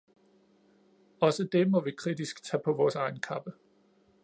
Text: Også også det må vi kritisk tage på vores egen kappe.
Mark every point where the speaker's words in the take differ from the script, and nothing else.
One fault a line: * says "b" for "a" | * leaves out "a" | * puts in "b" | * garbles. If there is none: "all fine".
* leaves out "også"